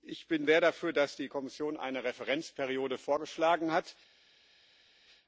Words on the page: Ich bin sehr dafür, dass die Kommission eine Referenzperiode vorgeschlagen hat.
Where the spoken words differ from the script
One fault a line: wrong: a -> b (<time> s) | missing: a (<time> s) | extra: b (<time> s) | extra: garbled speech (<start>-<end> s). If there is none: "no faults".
no faults